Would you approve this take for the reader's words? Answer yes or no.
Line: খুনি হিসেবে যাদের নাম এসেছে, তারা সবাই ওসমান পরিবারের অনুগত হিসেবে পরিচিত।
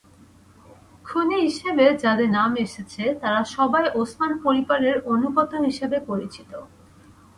yes